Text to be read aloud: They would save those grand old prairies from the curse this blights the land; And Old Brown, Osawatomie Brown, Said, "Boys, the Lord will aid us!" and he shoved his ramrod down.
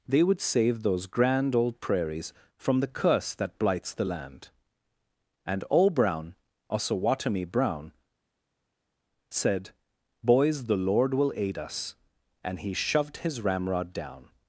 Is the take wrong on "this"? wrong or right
wrong